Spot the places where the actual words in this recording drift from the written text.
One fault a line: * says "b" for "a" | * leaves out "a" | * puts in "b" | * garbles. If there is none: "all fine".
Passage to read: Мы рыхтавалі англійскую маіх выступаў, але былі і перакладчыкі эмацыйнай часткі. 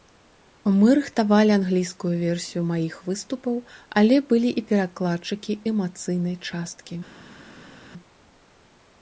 * puts in "версію"